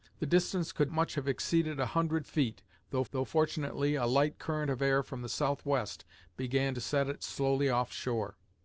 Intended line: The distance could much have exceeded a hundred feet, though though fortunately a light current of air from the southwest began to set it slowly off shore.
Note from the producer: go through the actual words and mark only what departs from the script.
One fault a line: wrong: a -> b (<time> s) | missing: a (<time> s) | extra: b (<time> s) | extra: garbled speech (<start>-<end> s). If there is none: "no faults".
no faults